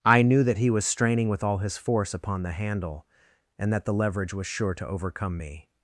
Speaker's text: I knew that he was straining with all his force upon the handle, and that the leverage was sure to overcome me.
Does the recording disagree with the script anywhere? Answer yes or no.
no